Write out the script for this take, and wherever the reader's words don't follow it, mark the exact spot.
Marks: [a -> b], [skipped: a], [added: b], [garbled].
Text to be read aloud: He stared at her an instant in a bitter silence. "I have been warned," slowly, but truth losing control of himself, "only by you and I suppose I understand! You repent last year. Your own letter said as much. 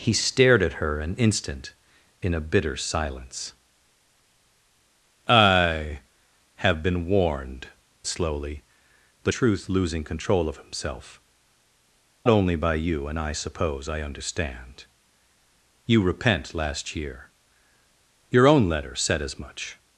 He stared at her an instant in a bitter silence. "I have been warned," slowly, but truth losing control of himself, "only by you and I suppose I understand! You repent last year. Your own letter said as much.